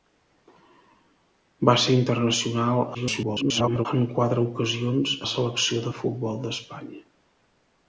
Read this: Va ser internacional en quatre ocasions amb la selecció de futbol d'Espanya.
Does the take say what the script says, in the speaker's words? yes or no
no